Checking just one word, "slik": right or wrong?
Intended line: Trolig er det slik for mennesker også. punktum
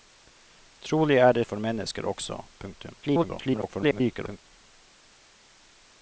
wrong